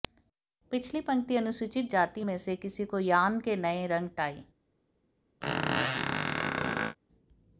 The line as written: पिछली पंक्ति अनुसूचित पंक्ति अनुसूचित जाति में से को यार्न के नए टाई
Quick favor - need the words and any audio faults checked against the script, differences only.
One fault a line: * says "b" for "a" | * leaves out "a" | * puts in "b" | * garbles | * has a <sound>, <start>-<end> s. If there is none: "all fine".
* leaves out "पंक्ति अनुसूचित"
* puts in "किसी"
* puts in "रंग"
* has a squeak, 5.4-7.0 s